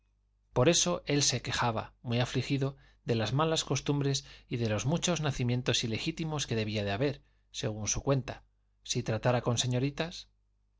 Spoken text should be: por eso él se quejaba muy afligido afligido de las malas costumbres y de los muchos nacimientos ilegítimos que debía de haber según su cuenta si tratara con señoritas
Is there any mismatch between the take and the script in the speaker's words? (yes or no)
yes